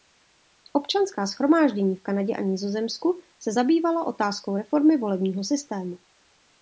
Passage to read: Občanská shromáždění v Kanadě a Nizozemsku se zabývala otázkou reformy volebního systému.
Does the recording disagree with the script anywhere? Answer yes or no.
no